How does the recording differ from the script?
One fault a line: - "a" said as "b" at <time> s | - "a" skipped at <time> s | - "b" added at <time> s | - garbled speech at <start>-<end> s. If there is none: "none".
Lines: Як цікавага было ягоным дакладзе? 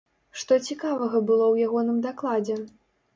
- "Як" said as "Што" at 0.4 s
- "ў" added at 1.5 s